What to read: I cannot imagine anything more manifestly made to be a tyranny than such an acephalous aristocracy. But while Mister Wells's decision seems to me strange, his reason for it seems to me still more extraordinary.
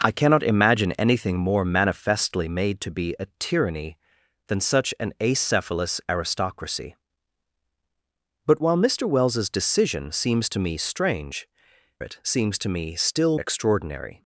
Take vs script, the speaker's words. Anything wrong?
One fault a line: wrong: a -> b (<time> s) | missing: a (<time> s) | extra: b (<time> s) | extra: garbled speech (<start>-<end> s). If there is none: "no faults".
missing: his reason for (11.5 s)
missing: more (13.4 s)